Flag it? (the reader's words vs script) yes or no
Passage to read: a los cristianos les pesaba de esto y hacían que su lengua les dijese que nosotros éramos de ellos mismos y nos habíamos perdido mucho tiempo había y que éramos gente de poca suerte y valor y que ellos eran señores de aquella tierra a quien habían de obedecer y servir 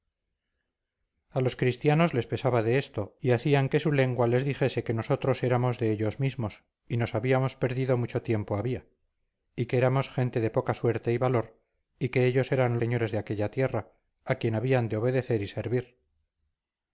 no